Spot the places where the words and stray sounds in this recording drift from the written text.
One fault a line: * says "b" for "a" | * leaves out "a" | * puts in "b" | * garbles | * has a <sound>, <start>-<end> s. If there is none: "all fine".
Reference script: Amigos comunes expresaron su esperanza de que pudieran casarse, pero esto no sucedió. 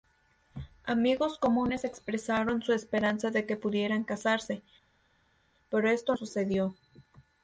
* leaves out "no"